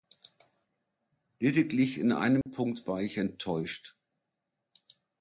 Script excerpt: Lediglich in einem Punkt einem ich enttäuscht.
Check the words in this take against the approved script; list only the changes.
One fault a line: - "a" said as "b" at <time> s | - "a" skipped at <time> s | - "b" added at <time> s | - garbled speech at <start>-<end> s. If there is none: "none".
- "einem" said as "war" at 2.9 s